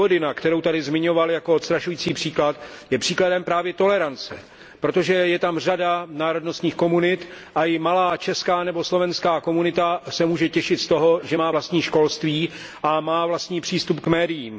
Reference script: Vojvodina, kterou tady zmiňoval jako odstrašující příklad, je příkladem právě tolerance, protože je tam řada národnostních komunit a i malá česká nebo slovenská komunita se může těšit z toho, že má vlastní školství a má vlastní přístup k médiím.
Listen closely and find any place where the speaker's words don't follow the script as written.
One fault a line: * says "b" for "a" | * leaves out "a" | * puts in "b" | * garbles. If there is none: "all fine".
all fine